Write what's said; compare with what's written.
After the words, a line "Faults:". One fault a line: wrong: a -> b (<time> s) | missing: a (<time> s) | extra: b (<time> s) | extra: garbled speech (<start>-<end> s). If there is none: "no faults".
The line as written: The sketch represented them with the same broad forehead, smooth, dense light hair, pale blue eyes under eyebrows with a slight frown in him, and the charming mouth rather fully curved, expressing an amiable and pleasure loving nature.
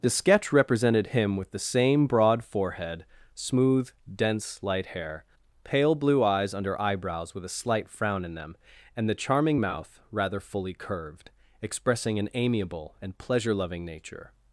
The sketch represented him with the same broad forehead, smooth, dense light hair, pale blue eyes under eyebrows with a slight frown in them, and the charming mouth rather fully curved, expressing an amiable and pleasure loving nature.
Faults:
wrong: them -> him (1.1 s)
wrong: him -> them (8.3 s)